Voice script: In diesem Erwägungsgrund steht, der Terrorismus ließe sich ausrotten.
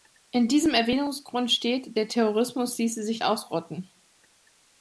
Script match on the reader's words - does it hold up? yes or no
yes